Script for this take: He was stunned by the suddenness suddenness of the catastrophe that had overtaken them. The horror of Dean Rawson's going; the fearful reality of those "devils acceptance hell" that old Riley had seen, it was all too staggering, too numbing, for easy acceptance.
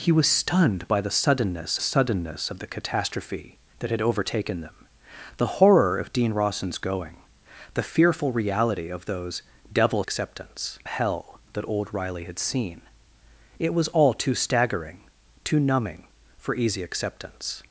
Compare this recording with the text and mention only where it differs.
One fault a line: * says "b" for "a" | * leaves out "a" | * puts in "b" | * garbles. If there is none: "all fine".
all fine